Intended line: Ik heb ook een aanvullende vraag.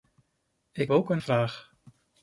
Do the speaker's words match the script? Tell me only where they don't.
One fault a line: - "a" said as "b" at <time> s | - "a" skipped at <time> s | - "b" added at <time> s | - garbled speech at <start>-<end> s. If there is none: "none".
- "heb" skipped at 0.9 s
- "aanvullende" skipped at 1.2 s